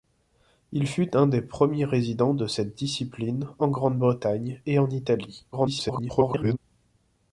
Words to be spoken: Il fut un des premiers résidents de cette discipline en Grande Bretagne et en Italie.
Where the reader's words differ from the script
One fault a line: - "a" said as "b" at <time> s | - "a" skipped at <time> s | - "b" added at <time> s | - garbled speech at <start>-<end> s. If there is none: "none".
- garbled speech at 5.5-6.6 s